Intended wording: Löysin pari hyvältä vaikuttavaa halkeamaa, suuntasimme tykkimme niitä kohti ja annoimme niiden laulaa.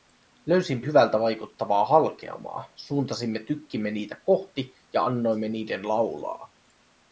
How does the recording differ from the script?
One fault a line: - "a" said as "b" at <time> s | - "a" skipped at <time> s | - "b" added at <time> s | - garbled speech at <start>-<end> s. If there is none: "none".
- "pari" skipped at 0.8 s